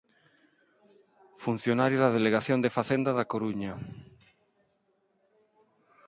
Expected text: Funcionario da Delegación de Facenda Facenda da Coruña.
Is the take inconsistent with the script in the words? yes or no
yes